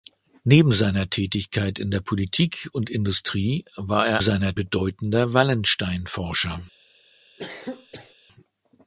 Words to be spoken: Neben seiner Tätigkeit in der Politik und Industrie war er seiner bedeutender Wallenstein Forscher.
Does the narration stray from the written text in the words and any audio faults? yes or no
yes